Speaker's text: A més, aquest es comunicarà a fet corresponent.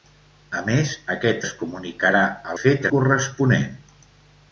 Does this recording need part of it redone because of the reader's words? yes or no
no